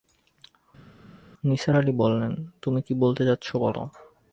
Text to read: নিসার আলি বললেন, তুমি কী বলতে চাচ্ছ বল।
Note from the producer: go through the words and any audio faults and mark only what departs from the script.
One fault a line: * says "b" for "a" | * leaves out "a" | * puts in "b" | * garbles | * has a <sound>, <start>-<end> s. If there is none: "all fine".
all fine